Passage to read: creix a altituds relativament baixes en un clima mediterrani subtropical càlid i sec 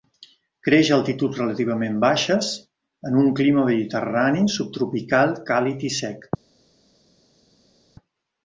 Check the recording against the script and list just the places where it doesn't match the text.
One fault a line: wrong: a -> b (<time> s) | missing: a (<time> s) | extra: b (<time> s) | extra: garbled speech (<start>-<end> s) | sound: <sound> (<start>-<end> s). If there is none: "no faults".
no faults